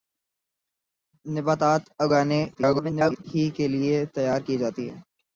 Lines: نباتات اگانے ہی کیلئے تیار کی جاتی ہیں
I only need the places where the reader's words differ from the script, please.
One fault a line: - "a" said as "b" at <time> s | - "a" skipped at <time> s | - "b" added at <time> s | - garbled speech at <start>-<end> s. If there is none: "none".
- garbled speech at 2.5-3.2 s